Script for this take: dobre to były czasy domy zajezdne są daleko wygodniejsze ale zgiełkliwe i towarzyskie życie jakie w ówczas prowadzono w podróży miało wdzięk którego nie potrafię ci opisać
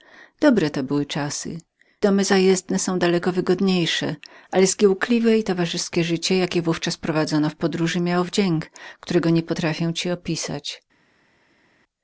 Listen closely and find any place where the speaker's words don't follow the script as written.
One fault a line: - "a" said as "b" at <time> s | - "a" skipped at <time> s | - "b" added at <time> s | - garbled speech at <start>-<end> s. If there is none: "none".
none